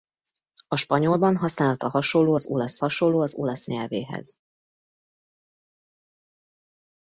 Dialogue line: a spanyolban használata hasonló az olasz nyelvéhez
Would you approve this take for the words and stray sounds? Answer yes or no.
no